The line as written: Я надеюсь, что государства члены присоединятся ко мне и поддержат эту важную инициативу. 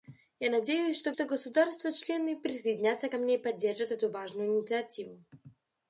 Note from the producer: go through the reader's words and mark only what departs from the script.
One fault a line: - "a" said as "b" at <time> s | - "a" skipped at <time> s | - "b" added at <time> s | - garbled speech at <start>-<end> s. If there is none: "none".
- "что" added at 1.1 s